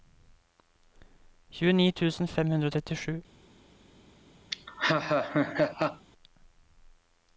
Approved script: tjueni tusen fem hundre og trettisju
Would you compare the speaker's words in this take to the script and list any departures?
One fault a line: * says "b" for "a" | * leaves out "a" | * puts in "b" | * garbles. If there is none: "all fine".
all fine